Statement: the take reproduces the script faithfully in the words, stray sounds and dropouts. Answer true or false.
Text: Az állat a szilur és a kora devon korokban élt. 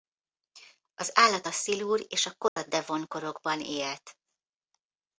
false